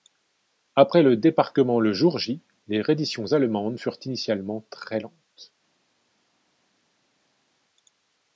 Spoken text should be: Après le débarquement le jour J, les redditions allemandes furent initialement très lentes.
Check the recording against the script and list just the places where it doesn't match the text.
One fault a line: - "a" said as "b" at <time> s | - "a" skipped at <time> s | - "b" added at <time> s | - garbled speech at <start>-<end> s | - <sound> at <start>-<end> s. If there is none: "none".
none